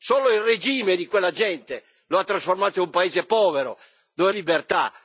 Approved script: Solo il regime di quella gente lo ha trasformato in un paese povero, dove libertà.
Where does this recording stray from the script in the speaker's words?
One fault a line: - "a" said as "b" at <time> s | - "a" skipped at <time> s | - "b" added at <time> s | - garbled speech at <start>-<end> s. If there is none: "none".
none